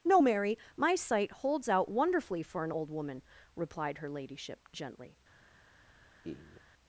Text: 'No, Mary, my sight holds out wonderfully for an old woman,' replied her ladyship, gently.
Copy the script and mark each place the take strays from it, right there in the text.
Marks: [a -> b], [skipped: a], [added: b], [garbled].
'No, Mary, my sight holds out wonderfully for an old woman,' replied her ladyship, gently.